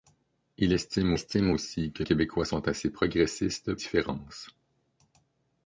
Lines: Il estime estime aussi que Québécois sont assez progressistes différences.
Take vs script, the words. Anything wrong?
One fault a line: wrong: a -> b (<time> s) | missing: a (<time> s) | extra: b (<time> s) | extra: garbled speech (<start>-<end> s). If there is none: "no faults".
no faults